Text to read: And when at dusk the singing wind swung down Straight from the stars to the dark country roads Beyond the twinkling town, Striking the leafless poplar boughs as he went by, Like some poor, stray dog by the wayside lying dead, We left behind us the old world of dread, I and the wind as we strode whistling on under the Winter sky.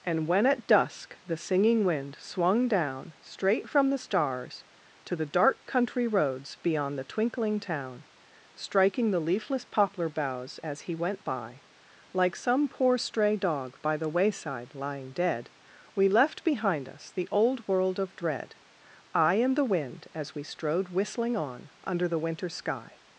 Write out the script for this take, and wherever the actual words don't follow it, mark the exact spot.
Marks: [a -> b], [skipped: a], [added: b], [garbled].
And when at dusk the singing wind swung down Straight from the stars to the dark country roads Beyond the twinkling town, Striking the leafless poplar boughs as he went by, Like some poor, stray dog by the wayside lying dead, We left behind us the old world of dread, I and the wind as we strode whistling on under the Winter sky.